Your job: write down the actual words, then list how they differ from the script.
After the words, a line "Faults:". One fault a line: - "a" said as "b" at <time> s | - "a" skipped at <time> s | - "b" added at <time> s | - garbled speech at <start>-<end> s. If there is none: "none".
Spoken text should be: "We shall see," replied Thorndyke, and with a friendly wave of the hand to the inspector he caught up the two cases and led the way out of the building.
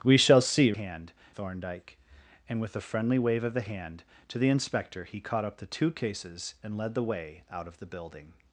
"We shall see," hand Thorndyke, and with a friendly wave of the hand to the inspector he caught up the two cases and led the way out of the building.
Faults:
- "replied" said as "hand" at 0.7 s